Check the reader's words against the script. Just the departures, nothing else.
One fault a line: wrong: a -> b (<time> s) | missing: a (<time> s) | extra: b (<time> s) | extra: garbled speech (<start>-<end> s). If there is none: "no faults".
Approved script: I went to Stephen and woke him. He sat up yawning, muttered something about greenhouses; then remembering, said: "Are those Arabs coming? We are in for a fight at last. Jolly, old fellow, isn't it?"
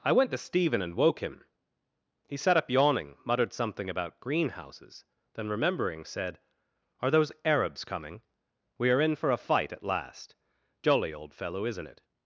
no faults